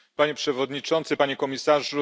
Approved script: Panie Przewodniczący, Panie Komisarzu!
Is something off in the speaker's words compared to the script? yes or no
no